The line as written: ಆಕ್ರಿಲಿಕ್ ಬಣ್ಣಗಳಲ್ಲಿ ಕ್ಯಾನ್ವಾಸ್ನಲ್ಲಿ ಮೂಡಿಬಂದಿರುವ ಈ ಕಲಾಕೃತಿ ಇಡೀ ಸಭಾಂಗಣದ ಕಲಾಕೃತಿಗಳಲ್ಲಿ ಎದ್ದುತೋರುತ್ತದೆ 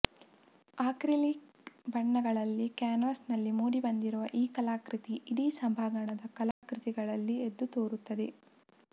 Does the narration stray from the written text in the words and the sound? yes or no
yes